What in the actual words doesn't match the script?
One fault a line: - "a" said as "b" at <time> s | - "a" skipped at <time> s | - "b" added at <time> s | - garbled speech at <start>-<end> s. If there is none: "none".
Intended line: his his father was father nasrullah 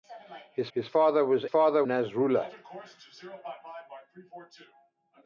none